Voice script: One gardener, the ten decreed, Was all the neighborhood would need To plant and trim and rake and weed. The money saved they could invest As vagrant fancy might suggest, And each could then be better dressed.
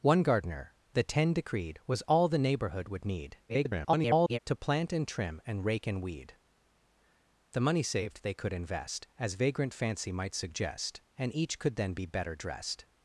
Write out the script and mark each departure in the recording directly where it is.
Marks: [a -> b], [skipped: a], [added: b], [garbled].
One gardener, the ten decreed, Was all the neighborhood would need [garbled] To plant and trim and rake and weed. The money saved they could invest As vagrant fancy might suggest, And each could then be better dressed.